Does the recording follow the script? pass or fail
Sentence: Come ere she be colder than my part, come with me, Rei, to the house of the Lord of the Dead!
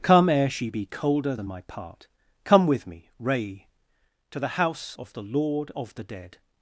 pass